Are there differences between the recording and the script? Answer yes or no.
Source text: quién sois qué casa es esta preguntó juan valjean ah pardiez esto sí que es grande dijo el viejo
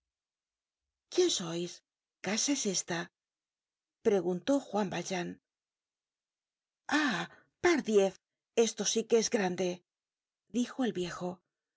yes